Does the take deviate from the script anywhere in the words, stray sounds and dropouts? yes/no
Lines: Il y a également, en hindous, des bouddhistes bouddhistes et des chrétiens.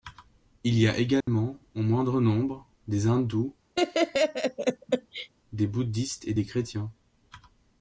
yes